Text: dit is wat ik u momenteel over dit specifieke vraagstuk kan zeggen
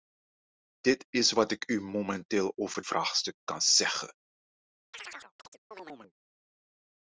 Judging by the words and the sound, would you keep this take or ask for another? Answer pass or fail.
fail